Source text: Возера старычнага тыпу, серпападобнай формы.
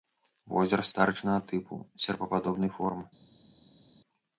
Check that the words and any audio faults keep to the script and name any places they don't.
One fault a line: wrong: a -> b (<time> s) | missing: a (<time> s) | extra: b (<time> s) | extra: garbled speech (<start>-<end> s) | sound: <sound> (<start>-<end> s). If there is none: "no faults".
no faults